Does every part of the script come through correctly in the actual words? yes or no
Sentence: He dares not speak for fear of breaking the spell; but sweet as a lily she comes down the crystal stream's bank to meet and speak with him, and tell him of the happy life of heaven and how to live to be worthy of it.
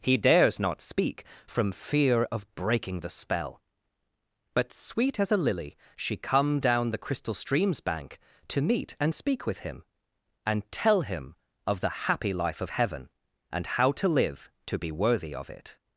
no